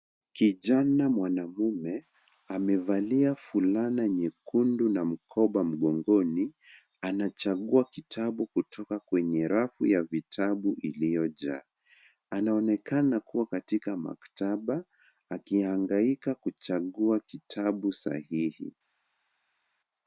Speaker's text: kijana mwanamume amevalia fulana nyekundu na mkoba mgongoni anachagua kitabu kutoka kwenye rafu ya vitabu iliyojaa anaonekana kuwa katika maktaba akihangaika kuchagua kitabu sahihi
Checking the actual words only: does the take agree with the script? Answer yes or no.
yes